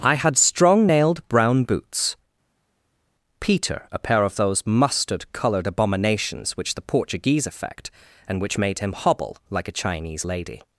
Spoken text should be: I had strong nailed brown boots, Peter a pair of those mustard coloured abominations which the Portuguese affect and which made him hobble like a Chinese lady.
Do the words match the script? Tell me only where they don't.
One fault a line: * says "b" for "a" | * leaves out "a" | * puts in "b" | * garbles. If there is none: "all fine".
all fine